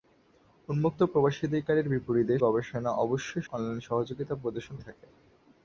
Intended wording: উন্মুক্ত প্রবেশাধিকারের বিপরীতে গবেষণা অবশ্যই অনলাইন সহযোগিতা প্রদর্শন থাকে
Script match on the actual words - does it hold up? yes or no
yes